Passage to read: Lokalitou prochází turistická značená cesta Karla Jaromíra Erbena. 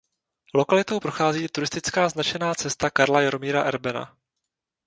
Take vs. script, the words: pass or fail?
pass